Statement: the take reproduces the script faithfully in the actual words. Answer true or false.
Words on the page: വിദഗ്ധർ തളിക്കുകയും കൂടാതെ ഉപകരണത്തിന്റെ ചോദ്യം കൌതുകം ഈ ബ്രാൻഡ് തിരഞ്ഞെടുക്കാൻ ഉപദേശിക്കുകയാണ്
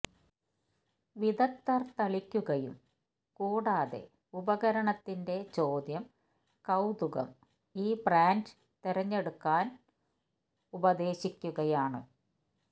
true